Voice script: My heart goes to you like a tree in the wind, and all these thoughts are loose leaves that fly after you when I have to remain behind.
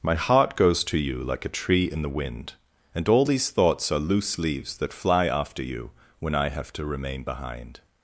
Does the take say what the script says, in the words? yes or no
yes